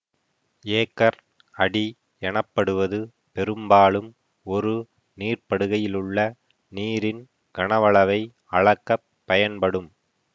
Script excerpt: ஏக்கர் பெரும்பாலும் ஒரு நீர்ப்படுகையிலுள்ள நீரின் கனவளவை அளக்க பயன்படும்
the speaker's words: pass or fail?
fail